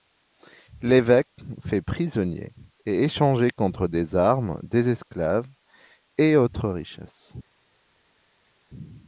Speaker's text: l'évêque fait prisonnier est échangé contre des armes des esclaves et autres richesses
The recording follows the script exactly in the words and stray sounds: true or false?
true